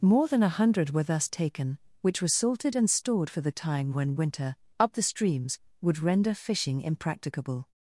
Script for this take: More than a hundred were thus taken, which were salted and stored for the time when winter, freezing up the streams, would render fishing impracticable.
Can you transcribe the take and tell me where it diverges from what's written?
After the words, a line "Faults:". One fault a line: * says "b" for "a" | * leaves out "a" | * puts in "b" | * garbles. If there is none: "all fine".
More than a hundred were thus taken, which were salted and stored for the time when winter, up the streams, would render fishing impracticable.
Faults:
* leaves out "freezing"